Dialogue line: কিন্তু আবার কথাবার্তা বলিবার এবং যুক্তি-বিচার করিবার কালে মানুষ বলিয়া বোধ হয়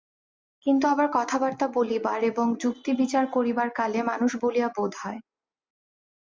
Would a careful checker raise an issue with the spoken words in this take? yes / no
no